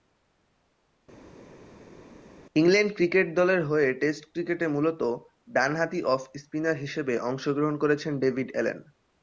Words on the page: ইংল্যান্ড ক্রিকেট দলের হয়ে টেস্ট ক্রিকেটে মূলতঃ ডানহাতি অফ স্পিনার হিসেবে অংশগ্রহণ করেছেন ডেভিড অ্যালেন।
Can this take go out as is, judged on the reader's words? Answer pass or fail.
pass